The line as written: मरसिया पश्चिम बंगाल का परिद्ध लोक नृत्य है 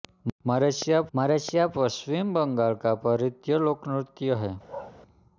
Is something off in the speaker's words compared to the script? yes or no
yes